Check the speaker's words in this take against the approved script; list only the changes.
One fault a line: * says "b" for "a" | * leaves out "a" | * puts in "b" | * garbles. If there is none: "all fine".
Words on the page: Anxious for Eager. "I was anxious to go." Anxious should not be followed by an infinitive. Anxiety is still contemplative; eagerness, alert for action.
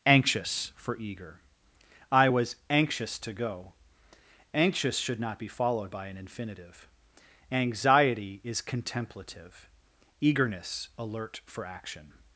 * leaves out "still"